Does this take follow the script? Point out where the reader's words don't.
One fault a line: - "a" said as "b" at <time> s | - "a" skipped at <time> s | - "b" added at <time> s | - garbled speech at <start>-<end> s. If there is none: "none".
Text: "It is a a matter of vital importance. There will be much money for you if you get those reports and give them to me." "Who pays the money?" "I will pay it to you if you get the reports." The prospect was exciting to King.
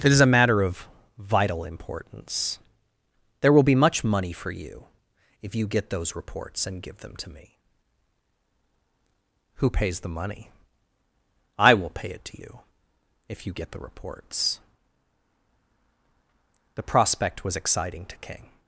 - "a" skipped at 0.4 s